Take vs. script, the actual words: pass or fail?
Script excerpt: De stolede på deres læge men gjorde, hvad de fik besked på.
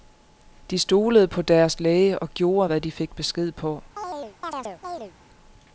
fail